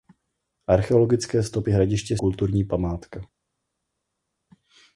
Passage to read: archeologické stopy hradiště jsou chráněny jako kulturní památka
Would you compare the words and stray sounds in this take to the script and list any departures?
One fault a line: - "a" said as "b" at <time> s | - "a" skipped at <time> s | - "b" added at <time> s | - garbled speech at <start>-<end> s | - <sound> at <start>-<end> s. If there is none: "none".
- "jsou chráněny jako" skipped at 2.2 s